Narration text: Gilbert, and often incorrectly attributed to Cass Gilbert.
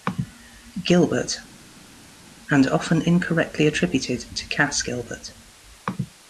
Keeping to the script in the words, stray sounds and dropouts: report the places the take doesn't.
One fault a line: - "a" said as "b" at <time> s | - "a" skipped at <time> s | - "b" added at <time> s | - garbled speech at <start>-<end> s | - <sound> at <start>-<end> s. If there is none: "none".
none